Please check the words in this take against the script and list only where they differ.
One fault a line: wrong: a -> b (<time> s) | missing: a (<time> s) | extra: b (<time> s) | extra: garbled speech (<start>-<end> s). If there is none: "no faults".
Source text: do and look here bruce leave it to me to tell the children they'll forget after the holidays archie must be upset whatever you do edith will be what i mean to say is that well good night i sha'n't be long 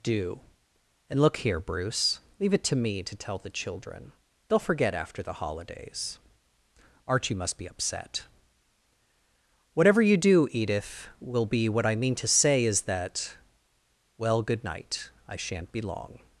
no faults